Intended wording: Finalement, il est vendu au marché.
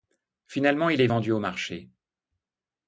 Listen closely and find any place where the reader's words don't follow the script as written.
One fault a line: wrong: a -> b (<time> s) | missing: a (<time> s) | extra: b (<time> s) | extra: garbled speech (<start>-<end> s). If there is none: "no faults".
no faults